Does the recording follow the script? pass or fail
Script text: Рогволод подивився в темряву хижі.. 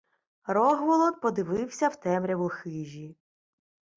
pass